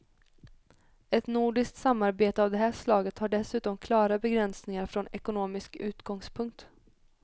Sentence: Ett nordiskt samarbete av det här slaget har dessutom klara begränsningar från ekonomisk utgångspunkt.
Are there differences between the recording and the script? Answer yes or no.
no